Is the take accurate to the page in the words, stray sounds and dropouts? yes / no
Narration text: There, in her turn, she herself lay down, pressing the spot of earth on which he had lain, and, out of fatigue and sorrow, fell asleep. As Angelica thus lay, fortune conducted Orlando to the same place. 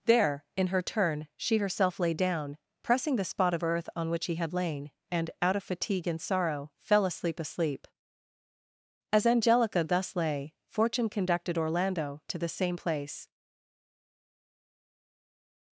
no